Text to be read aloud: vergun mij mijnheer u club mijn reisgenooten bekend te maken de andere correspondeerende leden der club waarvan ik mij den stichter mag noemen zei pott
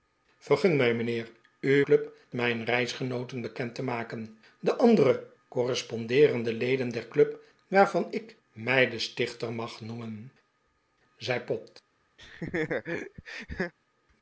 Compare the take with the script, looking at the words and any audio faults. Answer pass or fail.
fail